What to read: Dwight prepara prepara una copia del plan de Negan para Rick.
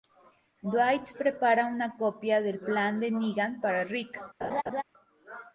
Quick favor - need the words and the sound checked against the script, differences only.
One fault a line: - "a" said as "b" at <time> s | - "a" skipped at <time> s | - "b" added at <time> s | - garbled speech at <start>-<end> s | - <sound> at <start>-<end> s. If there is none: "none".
- "prepara" skipped at 1.6 s
- laugh at 4.4-4.8 s